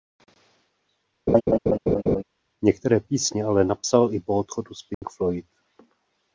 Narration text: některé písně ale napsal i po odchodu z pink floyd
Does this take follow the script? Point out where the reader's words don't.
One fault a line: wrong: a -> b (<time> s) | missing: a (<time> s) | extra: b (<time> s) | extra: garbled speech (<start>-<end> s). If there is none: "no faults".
no faults